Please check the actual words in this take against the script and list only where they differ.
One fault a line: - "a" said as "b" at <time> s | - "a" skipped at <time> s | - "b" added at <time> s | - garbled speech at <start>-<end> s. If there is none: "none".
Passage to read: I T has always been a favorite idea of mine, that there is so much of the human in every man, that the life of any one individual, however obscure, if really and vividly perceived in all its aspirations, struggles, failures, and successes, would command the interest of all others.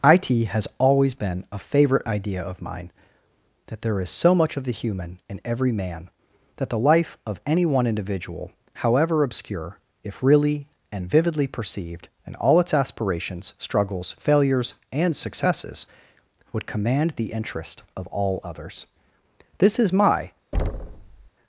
- "This is my" added at 19.6 s